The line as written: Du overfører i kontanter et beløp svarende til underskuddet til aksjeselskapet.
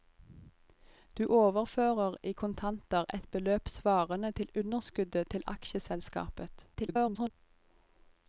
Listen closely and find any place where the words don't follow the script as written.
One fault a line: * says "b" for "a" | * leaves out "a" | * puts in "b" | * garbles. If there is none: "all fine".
* garbles